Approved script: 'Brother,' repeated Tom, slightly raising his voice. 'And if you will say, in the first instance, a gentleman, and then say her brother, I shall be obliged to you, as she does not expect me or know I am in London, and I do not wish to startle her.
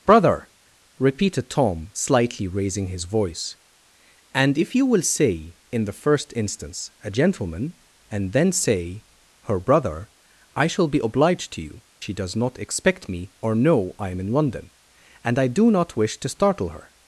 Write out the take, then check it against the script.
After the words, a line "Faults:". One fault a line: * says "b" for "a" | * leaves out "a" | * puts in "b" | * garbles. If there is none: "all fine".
'Brother,' repeated Tom, slightly raising his voice. 'And if you will say, in the first instance, a gentleman, and then say her brother, I shall be obliged to you, she does not expect me or know I am in London, and I do not wish to startle her.
Faults:
* leaves out "as"